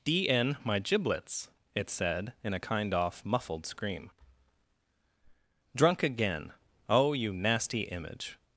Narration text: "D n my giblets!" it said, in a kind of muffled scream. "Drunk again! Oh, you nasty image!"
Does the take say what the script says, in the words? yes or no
no